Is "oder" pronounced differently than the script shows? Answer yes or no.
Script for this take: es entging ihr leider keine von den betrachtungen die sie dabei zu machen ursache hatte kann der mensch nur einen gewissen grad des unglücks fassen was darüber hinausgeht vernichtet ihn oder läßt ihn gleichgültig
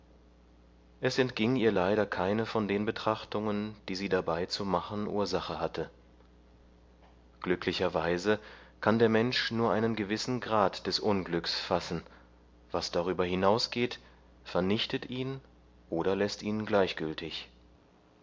no